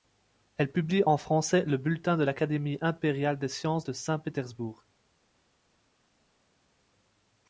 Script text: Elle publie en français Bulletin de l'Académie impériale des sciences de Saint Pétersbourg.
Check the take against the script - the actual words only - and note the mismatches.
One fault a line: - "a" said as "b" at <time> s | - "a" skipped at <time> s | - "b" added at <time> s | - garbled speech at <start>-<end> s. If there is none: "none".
- "le" added at 1.6 s